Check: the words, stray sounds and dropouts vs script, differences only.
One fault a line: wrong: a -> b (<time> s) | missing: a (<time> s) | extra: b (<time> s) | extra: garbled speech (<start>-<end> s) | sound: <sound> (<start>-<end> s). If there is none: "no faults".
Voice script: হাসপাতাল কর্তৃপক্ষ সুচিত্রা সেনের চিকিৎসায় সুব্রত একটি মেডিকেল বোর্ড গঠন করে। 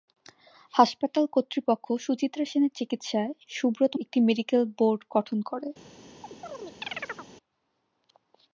sound: chirp (6.2-7.3 s)